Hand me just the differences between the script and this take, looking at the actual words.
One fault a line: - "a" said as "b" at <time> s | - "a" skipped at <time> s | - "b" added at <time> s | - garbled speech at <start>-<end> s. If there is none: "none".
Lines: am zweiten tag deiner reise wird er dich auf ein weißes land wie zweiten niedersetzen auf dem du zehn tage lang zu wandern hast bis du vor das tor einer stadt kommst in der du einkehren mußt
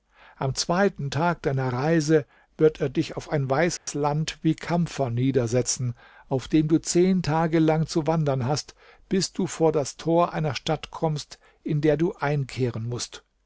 - "zweiten" said as "kampfer" at 4.5 s